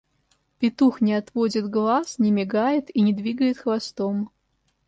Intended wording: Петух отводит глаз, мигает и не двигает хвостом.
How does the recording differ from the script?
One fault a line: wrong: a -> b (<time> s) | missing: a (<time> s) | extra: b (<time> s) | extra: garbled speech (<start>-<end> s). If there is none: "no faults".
extra: не (1.0 s)
extra: не (2.2 s)